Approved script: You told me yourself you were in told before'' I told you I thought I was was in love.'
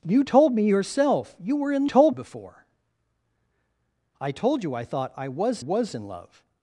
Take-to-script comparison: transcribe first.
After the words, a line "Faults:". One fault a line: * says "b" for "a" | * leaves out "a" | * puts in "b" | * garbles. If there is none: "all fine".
You told me yourself you were in told before'' I told you I thought I was was in love.'
Faults:
all fine